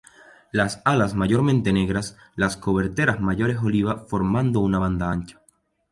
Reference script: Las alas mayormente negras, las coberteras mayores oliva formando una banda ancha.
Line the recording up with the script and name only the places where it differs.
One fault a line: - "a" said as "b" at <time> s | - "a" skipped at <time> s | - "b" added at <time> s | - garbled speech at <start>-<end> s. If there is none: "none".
none